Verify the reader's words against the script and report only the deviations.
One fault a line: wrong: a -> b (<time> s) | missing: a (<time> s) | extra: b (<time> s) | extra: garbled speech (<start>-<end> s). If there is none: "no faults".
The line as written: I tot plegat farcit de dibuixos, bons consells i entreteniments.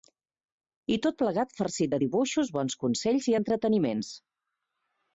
no faults